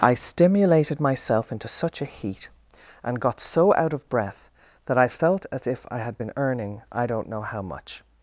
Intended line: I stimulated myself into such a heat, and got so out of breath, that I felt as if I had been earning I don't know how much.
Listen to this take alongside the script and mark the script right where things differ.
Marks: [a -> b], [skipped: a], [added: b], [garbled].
I stimulated myself into such a heat, and got so out of breath, that I felt as if I had been earning I don't know how much.